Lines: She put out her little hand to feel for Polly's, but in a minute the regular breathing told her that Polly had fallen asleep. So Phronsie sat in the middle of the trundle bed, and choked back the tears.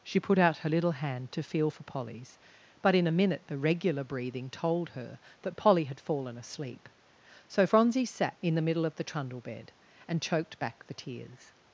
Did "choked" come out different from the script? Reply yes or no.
no